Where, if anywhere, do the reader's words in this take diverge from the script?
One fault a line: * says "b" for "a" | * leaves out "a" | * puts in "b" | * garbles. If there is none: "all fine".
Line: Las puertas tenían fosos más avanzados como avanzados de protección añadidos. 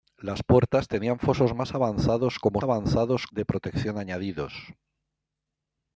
all fine